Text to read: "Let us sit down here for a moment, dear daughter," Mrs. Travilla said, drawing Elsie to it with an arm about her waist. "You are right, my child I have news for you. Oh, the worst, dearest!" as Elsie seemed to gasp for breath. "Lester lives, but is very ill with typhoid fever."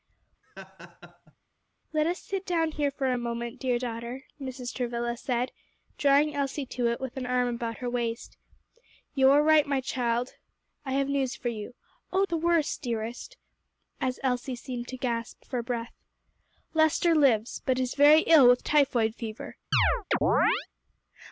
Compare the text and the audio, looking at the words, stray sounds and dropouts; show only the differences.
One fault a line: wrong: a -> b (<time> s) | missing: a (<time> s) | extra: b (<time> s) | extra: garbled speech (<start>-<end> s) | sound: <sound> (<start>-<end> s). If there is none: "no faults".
sound: laugh (0.4-1.3 s)
sound: chirp (19.7-20.7 s)